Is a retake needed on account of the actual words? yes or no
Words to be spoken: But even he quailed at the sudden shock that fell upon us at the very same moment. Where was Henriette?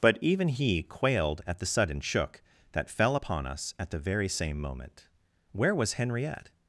yes